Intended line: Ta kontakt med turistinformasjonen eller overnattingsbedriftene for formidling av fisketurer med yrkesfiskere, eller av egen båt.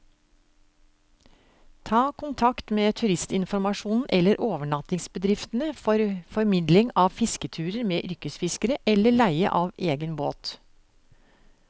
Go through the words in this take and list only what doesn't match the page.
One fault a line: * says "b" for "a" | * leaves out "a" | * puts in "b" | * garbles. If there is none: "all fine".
* puts in "leie"